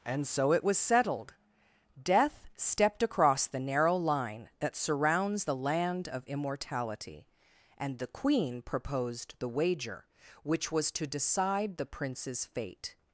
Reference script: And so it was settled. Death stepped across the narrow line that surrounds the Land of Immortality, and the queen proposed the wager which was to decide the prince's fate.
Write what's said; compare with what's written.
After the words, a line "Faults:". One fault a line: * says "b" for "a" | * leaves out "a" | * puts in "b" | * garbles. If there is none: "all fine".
And so it was settled. Death stepped across the narrow line that surrounds the Land of Immortality, and the queen proposed the wager which was to decide the prince's fate.
Faults:
all fine